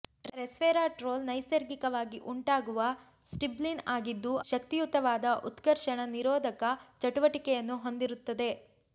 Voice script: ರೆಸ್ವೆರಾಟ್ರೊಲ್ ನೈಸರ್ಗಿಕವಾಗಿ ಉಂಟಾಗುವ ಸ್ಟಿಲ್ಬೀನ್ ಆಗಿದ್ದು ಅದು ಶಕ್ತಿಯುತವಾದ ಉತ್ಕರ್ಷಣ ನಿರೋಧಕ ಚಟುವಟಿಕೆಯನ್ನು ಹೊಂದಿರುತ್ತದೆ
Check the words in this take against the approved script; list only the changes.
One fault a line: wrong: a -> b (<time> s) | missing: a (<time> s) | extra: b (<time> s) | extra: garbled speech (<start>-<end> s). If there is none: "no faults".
missing: ಅದು (4.3 s)